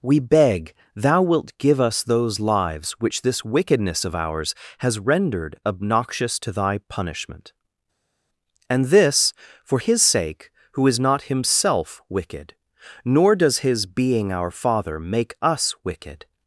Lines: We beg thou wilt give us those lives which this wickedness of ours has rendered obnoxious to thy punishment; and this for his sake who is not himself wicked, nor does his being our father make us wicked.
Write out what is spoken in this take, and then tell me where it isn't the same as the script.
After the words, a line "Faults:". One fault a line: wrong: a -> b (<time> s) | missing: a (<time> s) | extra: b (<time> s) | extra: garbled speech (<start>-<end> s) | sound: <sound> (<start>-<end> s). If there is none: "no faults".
We beg thou wilt give us those lives which this wickedness of ours has rendered obnoxious to thy punishment; and this for his sake who is not himself wicked, nor does his being our father make us wicked.
Faults:
no faults